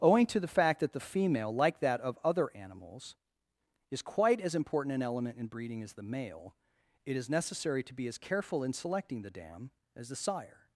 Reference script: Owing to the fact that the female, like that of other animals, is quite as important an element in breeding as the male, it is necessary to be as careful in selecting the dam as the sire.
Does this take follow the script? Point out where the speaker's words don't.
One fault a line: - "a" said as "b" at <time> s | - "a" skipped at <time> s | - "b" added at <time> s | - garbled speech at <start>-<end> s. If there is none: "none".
none